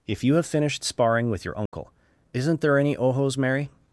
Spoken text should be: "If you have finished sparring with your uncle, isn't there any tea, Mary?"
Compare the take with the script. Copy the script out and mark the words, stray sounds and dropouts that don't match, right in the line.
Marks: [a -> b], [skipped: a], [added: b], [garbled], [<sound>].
"If you have finished sparring with your uncle, [dropout] isn't there any [tea, -> ojos] Mary?"